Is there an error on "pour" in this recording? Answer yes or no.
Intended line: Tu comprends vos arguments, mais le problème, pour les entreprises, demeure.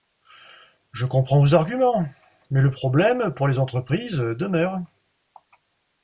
no